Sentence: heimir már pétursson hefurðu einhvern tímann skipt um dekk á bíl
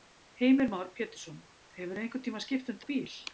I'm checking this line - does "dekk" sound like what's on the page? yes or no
no